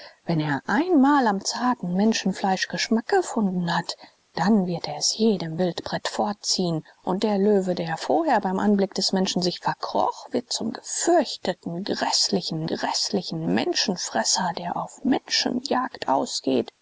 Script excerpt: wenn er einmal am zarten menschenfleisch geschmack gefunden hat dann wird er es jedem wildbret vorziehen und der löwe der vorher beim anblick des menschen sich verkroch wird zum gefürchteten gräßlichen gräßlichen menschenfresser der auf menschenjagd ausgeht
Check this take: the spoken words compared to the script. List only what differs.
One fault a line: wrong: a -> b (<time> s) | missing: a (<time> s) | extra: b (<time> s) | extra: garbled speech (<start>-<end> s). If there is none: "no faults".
no faults